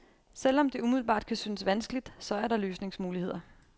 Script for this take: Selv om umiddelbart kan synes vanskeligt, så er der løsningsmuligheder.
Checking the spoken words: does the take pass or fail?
fail